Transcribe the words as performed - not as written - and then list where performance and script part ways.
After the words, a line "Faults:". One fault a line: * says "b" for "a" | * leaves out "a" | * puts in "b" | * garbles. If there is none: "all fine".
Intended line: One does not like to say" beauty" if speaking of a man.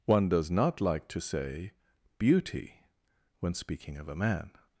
One does not like to say" beauty" when speaking of a man.
Faults:
* says "when" for "if"